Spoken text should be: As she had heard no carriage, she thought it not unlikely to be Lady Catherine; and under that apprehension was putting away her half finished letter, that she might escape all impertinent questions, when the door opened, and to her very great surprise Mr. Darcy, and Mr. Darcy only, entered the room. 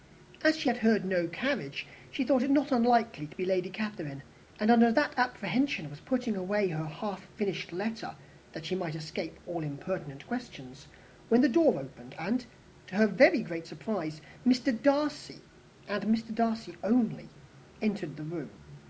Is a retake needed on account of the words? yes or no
no